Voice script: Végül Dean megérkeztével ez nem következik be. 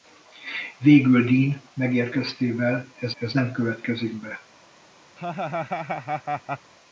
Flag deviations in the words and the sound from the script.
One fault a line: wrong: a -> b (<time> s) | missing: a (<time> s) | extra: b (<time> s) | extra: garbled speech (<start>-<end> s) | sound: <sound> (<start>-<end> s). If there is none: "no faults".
extra: ez (3.2 s)
sound: laugh (5.2-6.7 s)